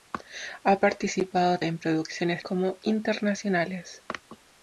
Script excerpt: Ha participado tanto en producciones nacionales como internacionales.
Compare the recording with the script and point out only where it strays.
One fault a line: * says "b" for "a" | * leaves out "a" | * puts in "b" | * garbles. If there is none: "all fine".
* leaves out "tanto"
* leaves out "nacionales"